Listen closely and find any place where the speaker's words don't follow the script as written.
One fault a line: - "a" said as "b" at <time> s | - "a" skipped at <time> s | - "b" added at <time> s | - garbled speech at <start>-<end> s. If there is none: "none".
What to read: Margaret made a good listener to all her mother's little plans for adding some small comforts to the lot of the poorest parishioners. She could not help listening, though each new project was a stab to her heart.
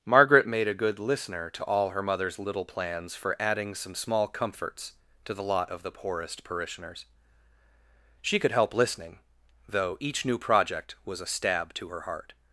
- "not" skipped at 8.5 s